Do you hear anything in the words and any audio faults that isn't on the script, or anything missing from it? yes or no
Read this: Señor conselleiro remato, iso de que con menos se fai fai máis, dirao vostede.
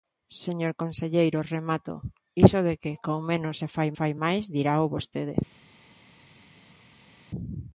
no